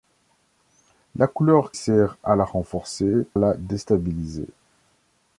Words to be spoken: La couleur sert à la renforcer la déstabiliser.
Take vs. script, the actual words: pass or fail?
pass